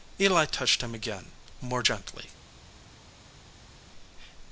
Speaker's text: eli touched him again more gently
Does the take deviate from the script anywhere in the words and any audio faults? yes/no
no